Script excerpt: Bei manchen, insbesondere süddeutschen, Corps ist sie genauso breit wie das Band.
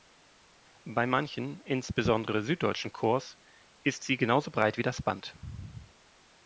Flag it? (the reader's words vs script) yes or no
no